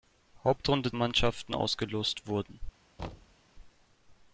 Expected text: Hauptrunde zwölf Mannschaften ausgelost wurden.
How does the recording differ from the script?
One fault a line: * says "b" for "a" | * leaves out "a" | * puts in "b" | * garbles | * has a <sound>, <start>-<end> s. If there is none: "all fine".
* leaves out "zwölf"
* has a thud, 3.0-3.4 s